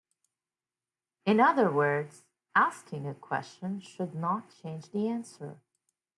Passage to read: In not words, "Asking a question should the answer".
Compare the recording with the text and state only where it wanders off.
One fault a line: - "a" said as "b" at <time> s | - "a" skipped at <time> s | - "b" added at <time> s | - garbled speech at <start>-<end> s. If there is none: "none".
- "not" said as "other" at 1.4 s
- "not change" added at 4.1 s